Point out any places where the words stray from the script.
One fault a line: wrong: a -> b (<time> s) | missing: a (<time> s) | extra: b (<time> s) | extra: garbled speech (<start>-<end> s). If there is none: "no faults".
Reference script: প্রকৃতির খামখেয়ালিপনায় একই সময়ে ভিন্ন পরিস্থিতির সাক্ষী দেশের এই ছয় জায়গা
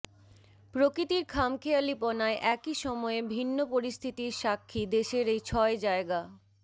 no faults